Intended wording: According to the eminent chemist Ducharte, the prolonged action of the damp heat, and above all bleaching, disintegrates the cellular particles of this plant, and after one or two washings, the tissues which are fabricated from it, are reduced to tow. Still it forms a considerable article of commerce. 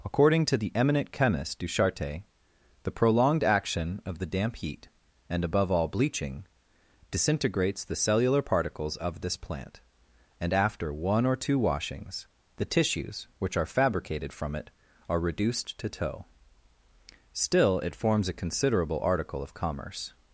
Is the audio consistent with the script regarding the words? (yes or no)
yes